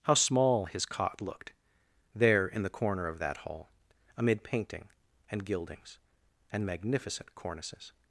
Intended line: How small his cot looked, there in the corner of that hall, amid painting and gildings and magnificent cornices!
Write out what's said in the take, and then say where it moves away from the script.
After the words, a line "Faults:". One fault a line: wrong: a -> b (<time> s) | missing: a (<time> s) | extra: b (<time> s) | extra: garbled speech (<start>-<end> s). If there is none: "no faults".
How small his cot looked, there in the corner of that hall, amid painting and gildings and magnificent cornices!
Faults:
no faults